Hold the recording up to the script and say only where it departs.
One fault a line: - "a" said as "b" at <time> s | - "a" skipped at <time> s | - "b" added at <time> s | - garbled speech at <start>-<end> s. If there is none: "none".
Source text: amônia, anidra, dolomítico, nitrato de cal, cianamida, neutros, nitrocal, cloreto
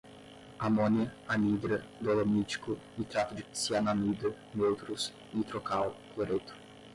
- "cal" skipped at 3.4 s